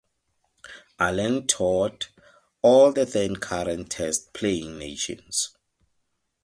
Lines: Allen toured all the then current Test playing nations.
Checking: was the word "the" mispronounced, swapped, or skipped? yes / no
no